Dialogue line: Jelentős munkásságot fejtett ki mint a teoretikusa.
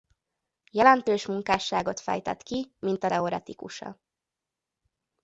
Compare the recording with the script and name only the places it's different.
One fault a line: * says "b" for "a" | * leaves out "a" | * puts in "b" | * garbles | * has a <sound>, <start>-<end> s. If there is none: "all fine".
all fine